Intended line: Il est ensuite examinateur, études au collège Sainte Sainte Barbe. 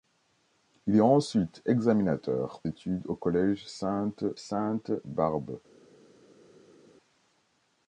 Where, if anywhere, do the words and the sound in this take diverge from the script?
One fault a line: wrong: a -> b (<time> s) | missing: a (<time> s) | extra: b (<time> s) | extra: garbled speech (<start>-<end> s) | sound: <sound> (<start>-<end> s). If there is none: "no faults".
no faults